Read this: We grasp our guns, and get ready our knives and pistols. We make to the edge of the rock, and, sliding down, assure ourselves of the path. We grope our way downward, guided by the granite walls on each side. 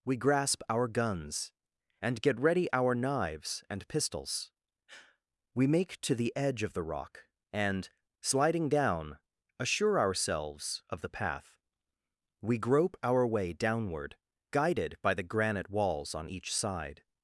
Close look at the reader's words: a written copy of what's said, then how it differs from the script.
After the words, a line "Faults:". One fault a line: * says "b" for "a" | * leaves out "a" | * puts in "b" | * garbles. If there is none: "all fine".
We grasp our guns, and get ready our knives and pistols. We make to the edge of the rock, and, sliding down, assure ourselves of the path. We grope our way downward, guided by the granite walls on each side.
Faults:
all fine